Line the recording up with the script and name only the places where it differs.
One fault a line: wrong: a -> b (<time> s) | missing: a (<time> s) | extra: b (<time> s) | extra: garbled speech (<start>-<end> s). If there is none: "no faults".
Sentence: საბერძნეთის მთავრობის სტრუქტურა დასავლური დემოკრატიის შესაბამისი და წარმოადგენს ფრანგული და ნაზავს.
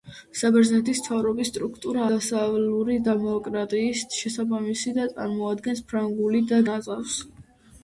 no faults